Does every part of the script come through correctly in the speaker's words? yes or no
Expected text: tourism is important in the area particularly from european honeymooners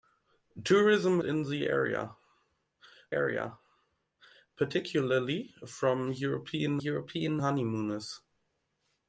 no